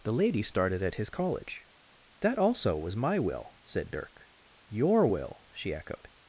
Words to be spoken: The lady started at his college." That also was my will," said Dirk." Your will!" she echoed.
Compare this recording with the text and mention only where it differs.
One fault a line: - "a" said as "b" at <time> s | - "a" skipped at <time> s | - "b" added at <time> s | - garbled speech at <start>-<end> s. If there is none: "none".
none